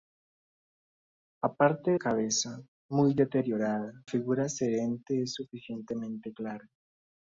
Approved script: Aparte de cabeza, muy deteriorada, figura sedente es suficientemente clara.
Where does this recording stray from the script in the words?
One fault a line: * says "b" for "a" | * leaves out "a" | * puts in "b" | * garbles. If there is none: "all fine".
all fine